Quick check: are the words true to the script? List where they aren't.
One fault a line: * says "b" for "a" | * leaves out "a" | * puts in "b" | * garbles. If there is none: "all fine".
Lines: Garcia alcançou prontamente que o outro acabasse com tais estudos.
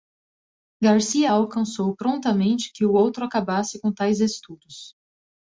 all fine